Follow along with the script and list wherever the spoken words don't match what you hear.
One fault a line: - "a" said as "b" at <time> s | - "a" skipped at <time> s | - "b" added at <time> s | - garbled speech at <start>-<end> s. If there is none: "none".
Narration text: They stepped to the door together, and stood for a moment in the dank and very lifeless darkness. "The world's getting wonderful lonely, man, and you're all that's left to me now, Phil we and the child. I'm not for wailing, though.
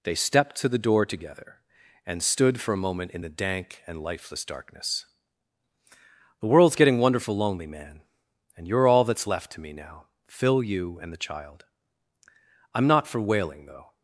- "very" skipped at 4.0 s
- "we" said as "you" at 10.6 s